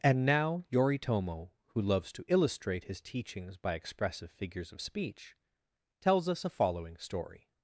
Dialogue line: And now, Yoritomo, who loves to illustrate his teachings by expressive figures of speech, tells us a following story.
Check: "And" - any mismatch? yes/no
no